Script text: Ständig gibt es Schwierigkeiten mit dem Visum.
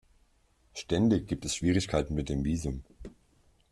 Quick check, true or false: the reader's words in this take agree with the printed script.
true